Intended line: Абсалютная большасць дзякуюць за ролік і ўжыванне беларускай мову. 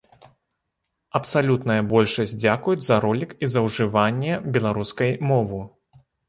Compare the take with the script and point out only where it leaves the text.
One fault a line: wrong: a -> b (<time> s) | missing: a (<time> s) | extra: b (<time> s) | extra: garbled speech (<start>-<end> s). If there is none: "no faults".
extra: за (3.6 s)